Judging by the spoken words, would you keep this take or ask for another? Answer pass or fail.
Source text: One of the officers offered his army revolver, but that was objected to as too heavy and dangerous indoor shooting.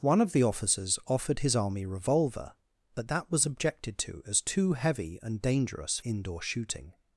pass